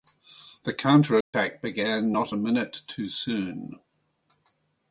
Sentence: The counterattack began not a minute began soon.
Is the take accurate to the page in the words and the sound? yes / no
no